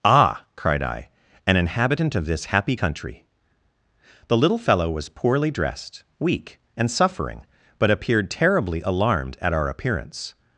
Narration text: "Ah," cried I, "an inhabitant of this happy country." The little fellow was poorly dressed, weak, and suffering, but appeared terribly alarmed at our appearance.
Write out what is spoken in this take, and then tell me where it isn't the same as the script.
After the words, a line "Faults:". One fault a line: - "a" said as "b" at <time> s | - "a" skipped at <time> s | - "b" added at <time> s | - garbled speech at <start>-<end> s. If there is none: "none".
"Ah," cried I, "an inhabitant of this happy country." The little fellow was poorly dressed, weak, and suffering, but appeared terribly alarmed at our appearance.
Faults:
none